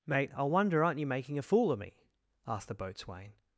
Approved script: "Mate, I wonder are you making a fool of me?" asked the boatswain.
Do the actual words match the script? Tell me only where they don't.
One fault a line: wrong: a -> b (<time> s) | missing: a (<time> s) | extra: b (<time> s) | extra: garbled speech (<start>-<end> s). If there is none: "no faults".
wrong: are -> aren't (0.8 s)